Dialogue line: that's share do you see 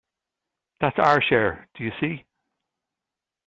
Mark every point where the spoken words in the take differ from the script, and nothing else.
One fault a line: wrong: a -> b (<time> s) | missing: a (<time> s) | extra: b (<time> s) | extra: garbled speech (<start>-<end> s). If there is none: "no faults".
extra: our (1.0 s)